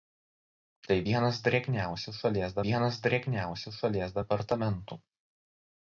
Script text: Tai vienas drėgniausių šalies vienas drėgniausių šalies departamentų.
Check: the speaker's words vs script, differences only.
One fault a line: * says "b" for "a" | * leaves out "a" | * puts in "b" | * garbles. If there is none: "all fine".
all fine